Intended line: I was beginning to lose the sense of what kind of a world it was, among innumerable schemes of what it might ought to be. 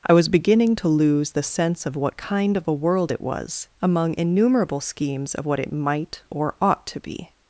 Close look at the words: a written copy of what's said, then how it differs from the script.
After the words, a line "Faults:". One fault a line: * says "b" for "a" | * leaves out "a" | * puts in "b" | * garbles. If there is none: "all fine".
I was beginning to lose the sense of what kind of a world it was, among innumerable schemes of what it might or ought to be.
Faults:
* puts in "or"